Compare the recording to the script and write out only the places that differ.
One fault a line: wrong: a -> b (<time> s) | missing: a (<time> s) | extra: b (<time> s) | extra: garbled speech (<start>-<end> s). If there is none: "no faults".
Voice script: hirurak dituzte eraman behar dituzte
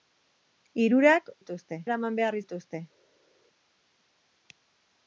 no faults